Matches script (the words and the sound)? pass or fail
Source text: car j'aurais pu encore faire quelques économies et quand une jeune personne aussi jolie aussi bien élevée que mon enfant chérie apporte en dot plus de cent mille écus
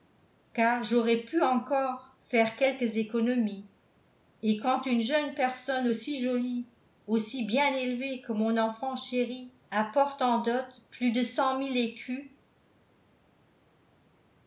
pass